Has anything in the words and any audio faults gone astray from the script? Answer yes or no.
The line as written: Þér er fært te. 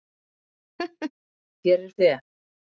yes